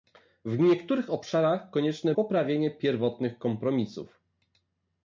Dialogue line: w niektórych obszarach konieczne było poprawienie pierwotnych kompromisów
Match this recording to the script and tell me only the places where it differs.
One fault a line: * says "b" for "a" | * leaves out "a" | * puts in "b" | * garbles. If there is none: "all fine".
* leaves out "było"